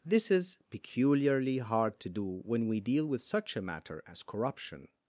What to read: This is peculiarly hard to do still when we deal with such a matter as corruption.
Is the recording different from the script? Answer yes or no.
yes